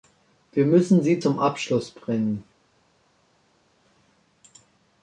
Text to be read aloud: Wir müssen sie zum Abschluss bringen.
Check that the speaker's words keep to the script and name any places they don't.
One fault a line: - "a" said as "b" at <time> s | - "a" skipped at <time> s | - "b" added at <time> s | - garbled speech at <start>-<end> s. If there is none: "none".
none